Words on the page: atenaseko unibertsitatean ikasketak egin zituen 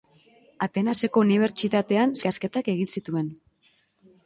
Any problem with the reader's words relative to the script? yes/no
no